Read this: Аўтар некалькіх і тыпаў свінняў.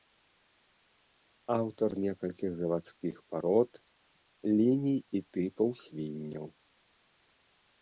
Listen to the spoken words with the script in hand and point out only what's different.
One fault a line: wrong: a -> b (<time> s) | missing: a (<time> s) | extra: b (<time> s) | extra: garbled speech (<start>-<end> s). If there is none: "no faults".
extra: завадскіх парод ліній (2.6 s)